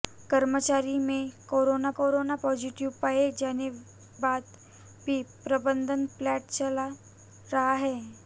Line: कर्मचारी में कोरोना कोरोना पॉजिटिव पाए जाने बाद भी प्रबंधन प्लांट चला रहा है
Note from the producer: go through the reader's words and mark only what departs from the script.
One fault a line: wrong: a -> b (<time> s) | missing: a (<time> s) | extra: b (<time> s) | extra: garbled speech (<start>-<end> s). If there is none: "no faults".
no faults